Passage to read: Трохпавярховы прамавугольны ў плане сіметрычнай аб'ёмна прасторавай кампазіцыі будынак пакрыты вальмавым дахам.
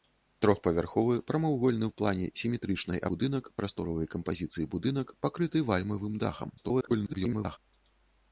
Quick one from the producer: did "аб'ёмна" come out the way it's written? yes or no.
no